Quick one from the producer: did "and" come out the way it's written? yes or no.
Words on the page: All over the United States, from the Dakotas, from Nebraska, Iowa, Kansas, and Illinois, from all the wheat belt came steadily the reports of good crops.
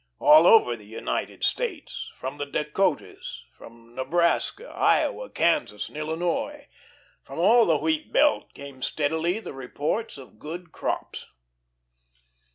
yes